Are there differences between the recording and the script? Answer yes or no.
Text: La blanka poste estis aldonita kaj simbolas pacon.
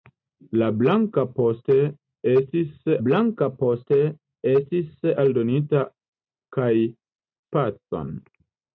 yes